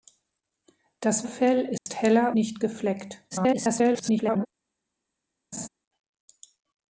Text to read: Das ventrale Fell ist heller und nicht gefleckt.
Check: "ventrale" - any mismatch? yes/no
yes